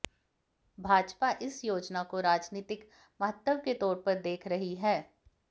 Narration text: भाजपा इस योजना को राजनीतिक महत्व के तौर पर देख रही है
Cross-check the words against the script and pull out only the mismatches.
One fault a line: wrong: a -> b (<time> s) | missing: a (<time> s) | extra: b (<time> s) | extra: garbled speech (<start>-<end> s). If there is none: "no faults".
no faults